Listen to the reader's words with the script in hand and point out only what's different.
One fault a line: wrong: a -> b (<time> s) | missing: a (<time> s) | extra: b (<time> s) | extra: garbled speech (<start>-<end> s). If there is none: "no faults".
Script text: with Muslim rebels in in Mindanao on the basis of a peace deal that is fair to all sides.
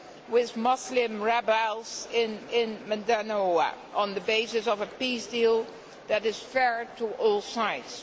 no faults